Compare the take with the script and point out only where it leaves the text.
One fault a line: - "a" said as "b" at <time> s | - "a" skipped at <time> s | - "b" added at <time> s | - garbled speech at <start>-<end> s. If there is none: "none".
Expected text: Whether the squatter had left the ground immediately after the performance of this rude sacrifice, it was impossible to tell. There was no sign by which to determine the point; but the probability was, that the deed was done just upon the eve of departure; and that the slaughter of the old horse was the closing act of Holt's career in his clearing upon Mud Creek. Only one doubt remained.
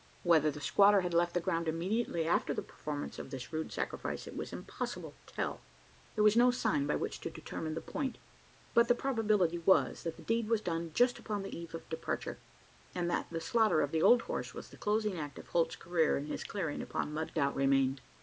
- "Creek Only one" skipped at 17.4 s